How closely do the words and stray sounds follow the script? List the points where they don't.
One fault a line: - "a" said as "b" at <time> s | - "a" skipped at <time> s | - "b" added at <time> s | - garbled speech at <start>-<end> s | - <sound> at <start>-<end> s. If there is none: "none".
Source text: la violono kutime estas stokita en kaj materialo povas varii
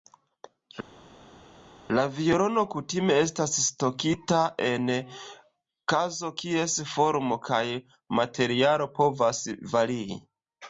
- "kazo kies formo" added at 5.9 s